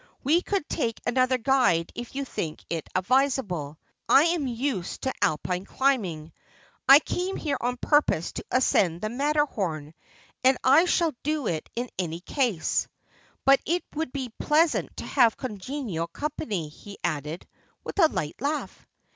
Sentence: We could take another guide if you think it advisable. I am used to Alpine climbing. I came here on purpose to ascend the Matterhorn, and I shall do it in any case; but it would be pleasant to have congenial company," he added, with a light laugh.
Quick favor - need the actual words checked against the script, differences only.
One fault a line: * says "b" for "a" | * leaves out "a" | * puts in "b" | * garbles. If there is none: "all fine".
all fine